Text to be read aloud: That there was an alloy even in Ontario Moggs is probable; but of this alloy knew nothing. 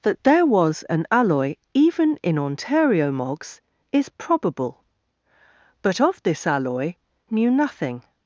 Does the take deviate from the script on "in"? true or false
false